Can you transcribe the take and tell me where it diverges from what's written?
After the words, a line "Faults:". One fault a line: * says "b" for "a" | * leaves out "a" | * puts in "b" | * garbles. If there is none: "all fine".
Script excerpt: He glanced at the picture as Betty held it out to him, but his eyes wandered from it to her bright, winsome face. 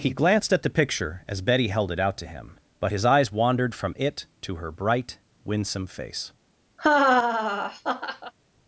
He glanced at the picture as Betty held it out to him, but his eyes wandered from it to her bright, winsome face.
Faults:
all fine